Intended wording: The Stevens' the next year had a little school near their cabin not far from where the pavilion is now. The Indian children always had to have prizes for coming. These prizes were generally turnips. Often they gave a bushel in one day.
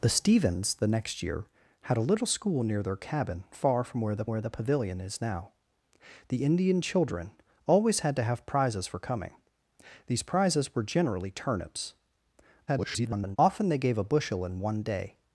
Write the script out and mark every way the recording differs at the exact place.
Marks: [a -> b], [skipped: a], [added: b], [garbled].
The Stevens' the next year had a little school near their cabin [skipped: not] far from where the [added: where the] pavilion is now. The Indian children always had to have prizes for coming. These prizes were generally turnips. [garbled] Often they gave a bushel in one day.